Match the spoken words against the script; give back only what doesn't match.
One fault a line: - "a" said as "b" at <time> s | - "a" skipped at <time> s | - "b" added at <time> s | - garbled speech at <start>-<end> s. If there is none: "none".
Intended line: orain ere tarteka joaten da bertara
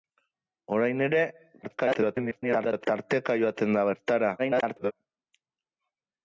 - garbled speech at 1.6-2.9 s
- garbled speech at 4.4-4.9 s